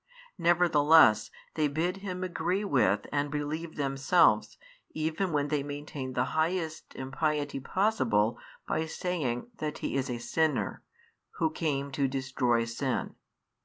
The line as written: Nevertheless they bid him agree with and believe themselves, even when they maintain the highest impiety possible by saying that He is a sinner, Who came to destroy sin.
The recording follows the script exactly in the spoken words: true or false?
true